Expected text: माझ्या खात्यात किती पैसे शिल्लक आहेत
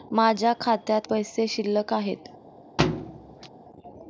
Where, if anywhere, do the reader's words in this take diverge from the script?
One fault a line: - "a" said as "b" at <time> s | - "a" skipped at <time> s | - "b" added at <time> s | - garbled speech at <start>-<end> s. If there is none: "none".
- "किती" skipped at 1.0 s